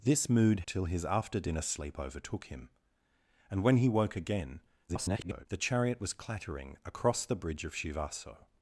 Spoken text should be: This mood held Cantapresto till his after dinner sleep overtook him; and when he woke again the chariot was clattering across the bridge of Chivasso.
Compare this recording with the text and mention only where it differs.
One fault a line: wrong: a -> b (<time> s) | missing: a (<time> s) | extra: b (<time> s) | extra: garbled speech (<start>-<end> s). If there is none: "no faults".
missing: held Cantapresto (0.6 s)
extra: garbled speech (4.9-5.5 s)